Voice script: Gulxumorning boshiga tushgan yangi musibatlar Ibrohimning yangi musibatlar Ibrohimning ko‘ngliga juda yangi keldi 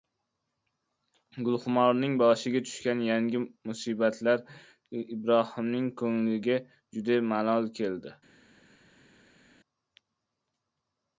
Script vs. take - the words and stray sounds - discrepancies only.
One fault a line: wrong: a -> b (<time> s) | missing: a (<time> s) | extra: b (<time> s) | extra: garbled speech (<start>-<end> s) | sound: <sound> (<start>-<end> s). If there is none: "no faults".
missing: yangi musibatlar Ibrohimning (5.9 s)
wrong: yangi -> malol (7.4 s)